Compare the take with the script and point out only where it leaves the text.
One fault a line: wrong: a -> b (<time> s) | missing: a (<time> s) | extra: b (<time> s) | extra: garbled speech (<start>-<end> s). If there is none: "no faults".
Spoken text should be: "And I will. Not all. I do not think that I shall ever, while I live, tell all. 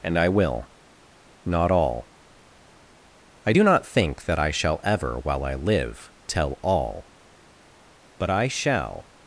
extra: But I shall (8.2 s)